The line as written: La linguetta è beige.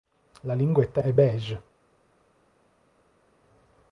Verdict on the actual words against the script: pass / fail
pass